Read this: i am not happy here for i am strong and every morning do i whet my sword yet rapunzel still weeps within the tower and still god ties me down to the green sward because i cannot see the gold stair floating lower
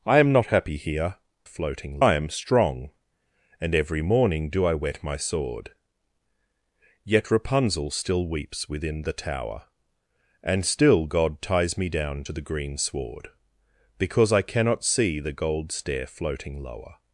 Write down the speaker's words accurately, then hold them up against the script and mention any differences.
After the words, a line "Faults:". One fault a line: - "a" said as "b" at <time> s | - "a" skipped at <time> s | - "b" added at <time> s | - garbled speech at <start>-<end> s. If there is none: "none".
i am not happy here floating i am strong and every morning do i whet my sword yet rapunzel still weeps within the tower and still god ties me down to the green sward because i cannot see the gold stair floating lower
Faults:
- "for" said as "floating" at 1.4 s